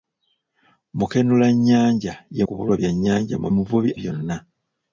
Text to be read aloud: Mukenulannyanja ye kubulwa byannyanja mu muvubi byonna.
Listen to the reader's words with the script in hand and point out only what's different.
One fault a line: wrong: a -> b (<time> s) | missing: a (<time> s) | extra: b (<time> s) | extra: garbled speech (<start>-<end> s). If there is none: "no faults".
no faults